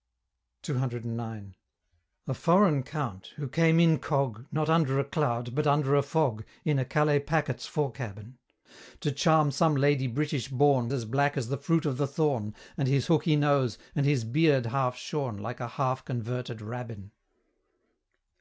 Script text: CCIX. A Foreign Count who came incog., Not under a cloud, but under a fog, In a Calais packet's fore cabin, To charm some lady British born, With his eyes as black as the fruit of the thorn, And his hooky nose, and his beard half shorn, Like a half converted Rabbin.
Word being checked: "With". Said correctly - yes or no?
no